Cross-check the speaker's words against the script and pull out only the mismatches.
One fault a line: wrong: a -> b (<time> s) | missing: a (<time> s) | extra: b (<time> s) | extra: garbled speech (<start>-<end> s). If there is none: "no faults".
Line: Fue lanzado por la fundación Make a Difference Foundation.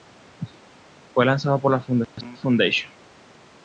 missing: Make a Difference (2.3 s)